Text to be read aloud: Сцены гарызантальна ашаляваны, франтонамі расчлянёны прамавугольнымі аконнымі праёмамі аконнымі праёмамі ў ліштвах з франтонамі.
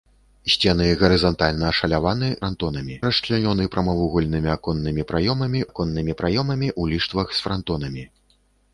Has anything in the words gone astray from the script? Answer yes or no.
no